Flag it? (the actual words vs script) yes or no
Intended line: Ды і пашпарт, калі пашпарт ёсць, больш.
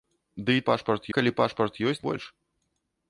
no